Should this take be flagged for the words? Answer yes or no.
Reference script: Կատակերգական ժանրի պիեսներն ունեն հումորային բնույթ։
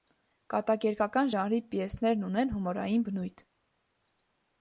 no